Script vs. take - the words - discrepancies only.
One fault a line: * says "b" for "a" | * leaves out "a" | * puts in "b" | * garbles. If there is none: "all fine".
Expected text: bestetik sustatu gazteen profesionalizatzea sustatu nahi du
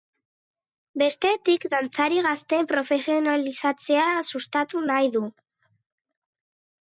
* says "dantzari" for "sustatu"